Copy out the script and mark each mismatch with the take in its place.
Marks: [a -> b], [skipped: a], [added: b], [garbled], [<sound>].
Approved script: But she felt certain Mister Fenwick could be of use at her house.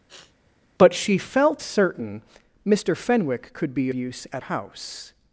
[sniff] But she felt certain Mister Fenwick could be [skipped: of] use at [skipped: her] house.